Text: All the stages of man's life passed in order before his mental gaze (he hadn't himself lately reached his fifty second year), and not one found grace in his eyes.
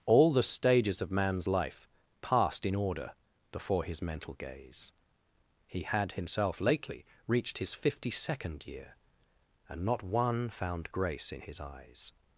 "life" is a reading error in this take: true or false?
false